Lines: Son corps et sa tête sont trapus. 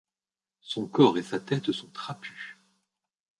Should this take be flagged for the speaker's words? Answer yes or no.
no